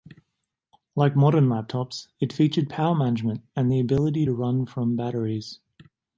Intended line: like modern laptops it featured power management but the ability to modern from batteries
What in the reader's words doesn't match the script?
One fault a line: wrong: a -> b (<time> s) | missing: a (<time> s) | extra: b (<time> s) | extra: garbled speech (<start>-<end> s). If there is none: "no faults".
wrong: but -> and (3.5 s)
wrong: modern -> run (4.3 s)